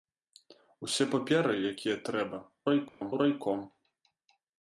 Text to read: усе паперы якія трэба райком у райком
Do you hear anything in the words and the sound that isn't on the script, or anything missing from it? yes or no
yes